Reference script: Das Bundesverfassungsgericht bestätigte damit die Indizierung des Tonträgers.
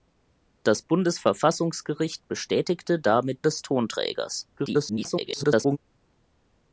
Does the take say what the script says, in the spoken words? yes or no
no